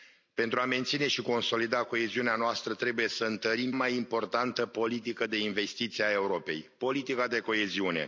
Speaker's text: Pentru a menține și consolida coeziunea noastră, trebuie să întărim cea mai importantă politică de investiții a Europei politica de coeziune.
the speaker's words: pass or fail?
fail